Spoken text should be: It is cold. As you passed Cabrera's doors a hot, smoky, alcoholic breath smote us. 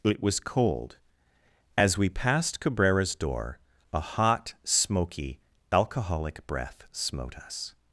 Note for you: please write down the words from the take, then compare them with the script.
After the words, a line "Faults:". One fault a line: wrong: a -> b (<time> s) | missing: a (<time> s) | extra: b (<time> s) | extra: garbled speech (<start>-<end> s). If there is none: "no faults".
It was cold. As we passed Cabrera's door a hot, smoky, alcoholic breath smote us.
Faults:
wrong: is -> was (0.2 s)
wrong: you -> we (1.9 s)
wrong: doors -> door (3.1 s)